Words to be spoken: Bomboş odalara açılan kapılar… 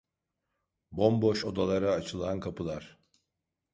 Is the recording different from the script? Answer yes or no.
no